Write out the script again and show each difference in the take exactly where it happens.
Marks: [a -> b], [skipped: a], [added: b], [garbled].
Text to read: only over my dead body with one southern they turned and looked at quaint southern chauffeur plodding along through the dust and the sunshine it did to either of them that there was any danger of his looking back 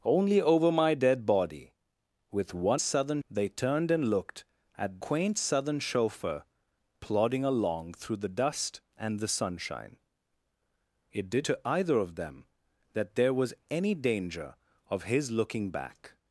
only over my dead body with one southern they turned and looked at quaint southern chauffeur plodding along through the dust and the sunshine it did to either of them that there was any danger of his looking back